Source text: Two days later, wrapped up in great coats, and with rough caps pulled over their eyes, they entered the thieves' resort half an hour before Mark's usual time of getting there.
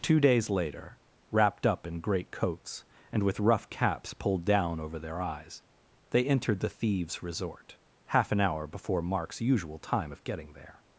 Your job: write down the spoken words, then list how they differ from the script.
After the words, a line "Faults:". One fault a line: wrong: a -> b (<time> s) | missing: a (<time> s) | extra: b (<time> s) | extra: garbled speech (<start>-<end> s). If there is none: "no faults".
Two days later, wrapped up in great coats, and with rough caps pulled down over their eyes, they entered the thieves' resort half an hour before Mark's usual time of getting there.
Faults:
extra: down (4.5 s)